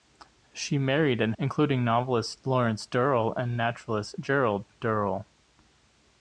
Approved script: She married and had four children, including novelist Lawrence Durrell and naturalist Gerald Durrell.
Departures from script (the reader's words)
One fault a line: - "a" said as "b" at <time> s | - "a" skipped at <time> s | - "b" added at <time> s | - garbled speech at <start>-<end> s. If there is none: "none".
- "had four children" skipped at 1.4 s